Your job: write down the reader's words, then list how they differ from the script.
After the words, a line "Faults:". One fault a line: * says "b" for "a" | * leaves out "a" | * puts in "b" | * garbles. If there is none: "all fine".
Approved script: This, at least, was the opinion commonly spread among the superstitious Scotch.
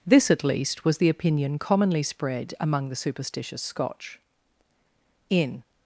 This, at least, was the opinion commonly spread among the superstitious Scotch. In
Faults:
* puts in "In"